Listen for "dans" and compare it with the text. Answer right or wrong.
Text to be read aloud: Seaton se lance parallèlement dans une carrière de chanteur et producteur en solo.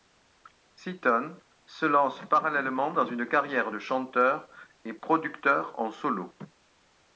right